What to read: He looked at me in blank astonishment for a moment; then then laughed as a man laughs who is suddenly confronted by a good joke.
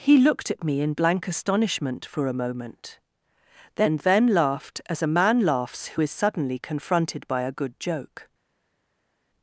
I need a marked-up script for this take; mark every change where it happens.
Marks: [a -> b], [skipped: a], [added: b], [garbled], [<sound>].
He looked at me in blank astonishment for a moment; then then laughed as a man laughs who is suddenly confronted by a good joke.